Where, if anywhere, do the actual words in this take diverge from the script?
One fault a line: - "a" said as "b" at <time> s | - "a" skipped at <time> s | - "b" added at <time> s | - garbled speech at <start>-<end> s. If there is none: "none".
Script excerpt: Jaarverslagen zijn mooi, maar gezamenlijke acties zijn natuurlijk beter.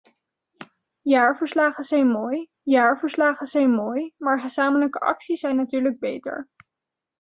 - "jaarverslagen zijn mooi" added at 2.6 s